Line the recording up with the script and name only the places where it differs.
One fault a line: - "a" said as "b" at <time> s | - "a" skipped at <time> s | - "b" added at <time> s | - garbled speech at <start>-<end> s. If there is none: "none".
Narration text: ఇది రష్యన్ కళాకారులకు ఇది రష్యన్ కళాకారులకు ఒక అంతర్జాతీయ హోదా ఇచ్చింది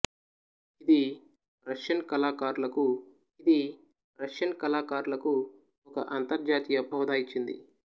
none